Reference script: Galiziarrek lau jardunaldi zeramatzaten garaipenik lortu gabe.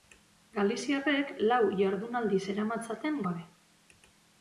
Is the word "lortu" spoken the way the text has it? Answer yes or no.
no